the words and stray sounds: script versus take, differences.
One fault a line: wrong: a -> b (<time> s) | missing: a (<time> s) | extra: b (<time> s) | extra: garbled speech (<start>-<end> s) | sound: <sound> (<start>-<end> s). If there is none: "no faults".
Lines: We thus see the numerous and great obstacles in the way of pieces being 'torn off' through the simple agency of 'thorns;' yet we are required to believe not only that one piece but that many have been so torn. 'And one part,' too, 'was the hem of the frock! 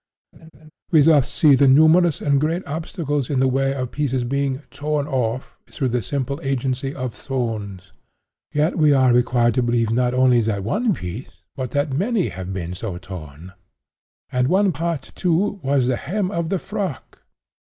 sound: laugh (0.3-0.7 s)